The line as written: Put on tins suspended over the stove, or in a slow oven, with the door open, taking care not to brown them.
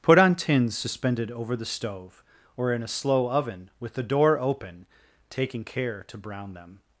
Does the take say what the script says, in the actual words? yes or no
no